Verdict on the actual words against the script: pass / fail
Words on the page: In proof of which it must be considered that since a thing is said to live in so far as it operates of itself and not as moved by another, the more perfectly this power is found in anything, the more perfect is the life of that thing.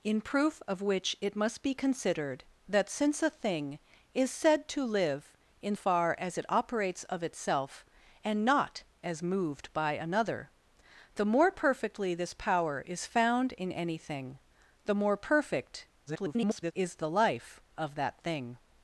fail